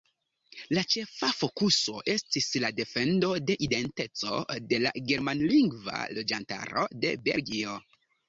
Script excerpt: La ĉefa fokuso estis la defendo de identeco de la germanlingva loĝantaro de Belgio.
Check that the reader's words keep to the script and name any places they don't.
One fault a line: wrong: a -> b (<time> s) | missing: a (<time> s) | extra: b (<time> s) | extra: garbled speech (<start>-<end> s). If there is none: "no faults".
no faults